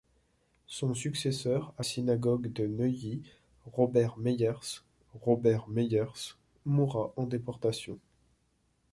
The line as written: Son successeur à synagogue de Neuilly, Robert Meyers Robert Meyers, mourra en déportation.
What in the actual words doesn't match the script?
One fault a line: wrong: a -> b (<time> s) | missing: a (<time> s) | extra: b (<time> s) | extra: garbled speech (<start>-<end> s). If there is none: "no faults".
no faults